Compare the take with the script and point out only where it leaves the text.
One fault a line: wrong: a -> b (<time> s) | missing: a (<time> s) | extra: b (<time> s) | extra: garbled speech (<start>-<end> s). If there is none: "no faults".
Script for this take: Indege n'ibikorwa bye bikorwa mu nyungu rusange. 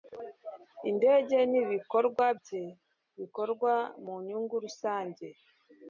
no faults